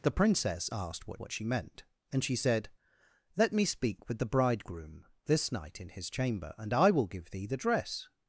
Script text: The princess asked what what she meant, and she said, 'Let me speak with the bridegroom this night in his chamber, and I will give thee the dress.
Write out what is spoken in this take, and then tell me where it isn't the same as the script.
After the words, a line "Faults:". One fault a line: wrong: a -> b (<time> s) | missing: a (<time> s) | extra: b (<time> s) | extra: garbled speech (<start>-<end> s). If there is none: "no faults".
The princess asked what what she meant, and she said, 'Let me speak with the bridegroom this night in his chamber, and I will give thee the dress.
Faults:
no faults